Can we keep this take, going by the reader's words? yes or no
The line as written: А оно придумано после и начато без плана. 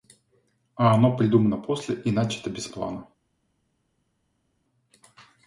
yes